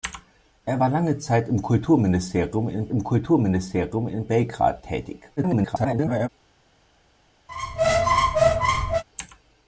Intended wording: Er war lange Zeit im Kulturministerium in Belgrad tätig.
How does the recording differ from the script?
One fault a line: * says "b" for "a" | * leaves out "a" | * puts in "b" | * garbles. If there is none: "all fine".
* puts in "im Kulturministerium in"
* garbles